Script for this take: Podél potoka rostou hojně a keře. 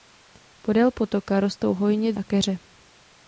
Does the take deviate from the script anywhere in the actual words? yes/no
no